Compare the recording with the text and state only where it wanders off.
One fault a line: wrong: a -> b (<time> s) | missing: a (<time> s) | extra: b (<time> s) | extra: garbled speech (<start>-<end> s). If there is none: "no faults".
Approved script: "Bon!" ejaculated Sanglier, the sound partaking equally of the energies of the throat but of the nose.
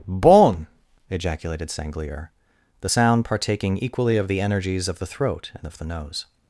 wrong: but -> and (5.5 s)